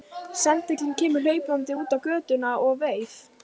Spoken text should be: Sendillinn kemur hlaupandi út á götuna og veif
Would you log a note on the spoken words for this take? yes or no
no